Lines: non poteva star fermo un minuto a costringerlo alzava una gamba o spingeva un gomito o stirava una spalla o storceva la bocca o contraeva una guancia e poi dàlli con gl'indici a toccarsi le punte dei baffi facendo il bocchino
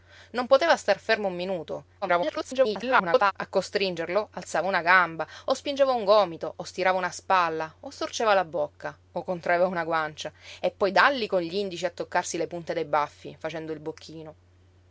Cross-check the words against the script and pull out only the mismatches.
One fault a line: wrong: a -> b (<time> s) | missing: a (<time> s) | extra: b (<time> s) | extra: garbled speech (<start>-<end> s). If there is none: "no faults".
extra: garbled speech (2.0-3.3 s)